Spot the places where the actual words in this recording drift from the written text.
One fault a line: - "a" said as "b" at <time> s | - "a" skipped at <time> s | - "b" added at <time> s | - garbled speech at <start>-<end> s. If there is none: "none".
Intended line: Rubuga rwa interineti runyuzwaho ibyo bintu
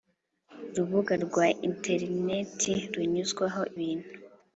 - "ibyo" skipped at 3.6 s